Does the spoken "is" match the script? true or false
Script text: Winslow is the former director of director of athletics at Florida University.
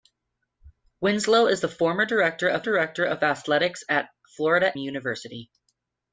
true